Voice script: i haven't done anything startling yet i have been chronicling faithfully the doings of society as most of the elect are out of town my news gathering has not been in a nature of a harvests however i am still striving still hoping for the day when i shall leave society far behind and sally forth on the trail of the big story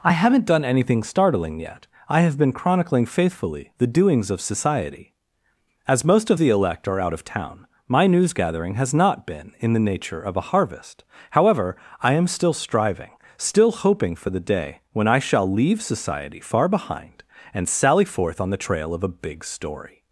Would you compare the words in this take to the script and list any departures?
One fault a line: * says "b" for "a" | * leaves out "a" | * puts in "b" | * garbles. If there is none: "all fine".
* says "the" for "a"
* says "harvest" for "harvests"
* says "a" for "the"